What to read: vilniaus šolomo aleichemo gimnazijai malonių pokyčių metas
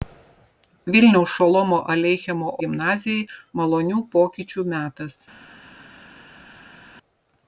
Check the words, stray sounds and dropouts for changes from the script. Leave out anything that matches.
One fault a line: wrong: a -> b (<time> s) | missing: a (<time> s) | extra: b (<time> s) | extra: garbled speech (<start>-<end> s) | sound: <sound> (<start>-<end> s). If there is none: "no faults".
no faults